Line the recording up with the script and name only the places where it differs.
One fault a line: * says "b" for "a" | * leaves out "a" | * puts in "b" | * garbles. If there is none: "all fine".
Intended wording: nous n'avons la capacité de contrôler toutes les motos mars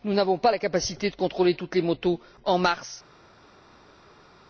* puts in "pas"
* puts in "en"